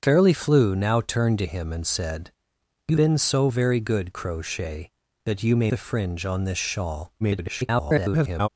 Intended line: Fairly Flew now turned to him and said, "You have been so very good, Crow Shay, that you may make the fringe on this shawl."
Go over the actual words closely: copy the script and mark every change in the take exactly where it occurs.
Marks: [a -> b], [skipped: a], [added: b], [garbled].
Fairly Flew now turned to him and said, "You [skipped: have] been so very good, Crow Shay, that you may [skipped: make] the fringe on this shawl." [garbled]